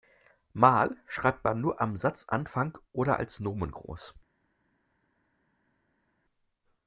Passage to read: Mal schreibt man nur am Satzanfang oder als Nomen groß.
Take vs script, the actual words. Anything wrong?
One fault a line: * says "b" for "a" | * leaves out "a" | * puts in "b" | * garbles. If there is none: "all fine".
all fine